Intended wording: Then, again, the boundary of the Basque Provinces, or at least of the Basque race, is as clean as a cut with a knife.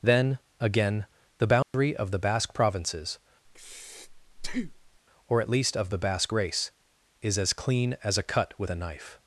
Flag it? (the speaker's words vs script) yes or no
no